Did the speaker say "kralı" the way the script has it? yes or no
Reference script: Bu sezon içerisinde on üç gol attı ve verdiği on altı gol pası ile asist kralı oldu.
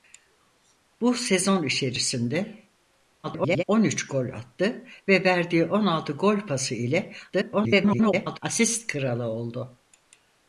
yes